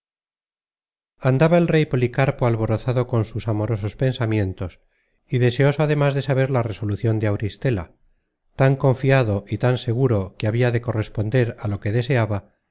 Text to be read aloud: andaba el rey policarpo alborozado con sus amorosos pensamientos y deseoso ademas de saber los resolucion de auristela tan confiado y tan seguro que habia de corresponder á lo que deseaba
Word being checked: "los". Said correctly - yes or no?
no